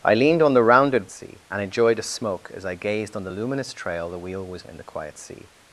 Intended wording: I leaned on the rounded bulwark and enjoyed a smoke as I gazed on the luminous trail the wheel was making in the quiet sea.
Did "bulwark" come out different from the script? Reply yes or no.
yes